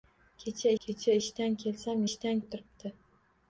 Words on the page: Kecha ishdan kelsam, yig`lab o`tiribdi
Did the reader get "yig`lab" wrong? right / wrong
wrong